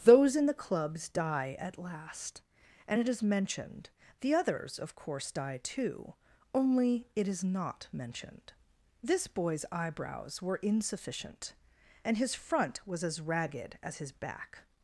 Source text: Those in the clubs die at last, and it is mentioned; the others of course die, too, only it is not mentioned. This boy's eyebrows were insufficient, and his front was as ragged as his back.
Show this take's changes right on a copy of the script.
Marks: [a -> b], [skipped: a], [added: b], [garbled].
Those in the clubs die at last, and it is mentioned; the others of course die, too, only it is not mentioned. This boy's eyebrows were insufficient, and his front was as ragged as his back.